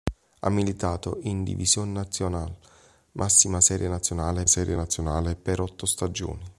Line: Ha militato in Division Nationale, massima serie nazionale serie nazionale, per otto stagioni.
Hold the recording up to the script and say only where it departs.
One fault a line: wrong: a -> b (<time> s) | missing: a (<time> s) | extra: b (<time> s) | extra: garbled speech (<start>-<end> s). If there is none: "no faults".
no faults